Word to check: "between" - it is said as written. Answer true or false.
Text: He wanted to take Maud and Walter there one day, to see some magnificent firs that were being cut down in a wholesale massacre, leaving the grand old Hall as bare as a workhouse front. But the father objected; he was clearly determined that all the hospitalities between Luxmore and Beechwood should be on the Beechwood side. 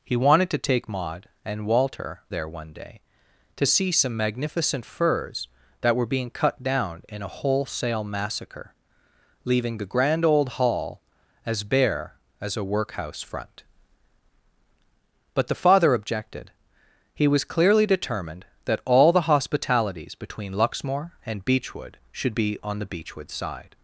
true